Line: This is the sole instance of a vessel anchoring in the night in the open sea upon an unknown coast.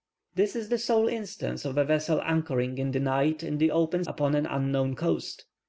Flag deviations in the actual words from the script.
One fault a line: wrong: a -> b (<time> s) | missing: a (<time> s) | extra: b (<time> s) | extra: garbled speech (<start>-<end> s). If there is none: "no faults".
missing: sea (4.0 s)